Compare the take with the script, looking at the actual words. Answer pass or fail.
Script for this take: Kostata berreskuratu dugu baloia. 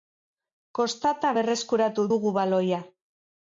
pass